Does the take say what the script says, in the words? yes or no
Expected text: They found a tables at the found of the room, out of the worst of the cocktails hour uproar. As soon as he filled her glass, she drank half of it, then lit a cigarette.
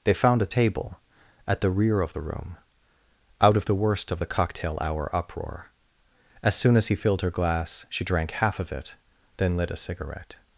no